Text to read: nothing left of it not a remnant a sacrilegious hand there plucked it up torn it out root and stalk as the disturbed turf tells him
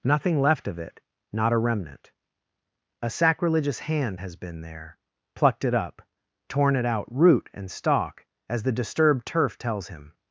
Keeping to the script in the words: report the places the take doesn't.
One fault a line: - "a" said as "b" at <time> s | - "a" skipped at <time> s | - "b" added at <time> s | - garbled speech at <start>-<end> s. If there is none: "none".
- "has been" added at 4.2 s